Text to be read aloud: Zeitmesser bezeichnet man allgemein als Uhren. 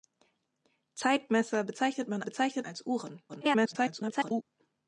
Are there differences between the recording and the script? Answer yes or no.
yes